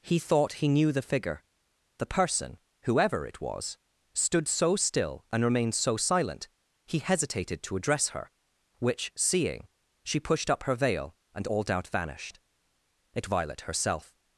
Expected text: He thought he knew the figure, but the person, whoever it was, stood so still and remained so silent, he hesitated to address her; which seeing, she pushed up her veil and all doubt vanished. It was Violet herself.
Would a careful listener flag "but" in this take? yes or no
yes